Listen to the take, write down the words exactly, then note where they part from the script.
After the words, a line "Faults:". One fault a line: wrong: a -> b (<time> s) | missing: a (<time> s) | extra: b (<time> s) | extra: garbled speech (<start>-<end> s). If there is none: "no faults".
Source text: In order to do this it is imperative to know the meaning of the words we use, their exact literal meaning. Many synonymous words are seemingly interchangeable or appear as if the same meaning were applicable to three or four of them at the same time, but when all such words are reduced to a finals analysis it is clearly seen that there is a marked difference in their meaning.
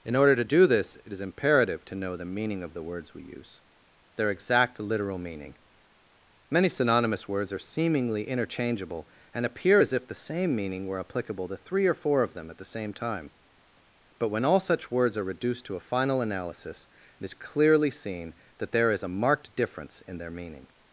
In order to do this it is imperative to know the meaning of the words we use, their exact literal meaning. Many synonymous words are seemingly interchangeable and appear as if the same meaning were applicable to three or four of them at the same time, but when all such words are reduced to a final analysis it is clearly seen that there is a marked difference in their meaning.
Faults:
wrong: or -> and (9.3 s)
wrong: finals -> final (15.8 s)